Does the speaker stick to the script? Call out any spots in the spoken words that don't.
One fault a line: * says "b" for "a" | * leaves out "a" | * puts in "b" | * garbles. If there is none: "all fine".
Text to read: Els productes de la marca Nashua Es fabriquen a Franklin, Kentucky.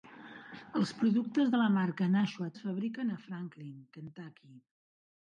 all fine